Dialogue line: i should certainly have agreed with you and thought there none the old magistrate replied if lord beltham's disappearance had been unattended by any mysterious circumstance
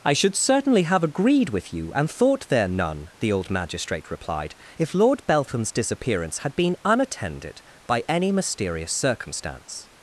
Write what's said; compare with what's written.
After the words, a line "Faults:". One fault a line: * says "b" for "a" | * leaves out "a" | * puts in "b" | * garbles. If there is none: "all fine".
i should certainly have agreed with you and thought there none the old magistrate replied if lord beltham's disappearance had been unattended by any mysterious circumstance
Faults:
all fine